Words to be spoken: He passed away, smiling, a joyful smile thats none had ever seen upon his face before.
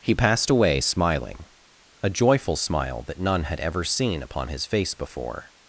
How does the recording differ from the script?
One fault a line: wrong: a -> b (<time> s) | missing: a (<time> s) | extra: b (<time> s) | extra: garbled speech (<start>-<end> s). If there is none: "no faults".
wrong: thats -> that (3.0 s)